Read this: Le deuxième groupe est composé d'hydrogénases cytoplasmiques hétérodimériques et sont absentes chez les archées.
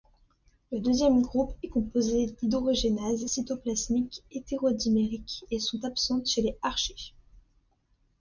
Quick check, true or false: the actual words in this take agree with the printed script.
true